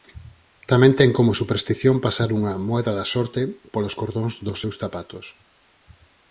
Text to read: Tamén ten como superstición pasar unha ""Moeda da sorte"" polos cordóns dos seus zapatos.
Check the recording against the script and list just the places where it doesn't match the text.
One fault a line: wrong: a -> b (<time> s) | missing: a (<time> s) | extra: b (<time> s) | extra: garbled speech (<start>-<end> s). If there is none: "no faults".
no faults